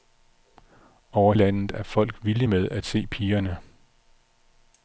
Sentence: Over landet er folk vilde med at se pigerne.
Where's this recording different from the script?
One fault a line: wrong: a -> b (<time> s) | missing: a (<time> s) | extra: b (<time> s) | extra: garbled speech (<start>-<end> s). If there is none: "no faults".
no faults